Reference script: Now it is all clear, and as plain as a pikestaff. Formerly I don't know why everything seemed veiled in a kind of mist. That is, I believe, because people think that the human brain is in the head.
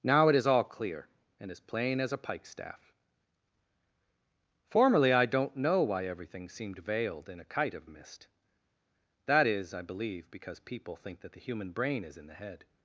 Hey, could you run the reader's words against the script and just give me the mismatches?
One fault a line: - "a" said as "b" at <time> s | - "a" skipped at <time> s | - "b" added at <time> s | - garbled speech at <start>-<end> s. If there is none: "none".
- "kind" said as "kite" at 7.5 s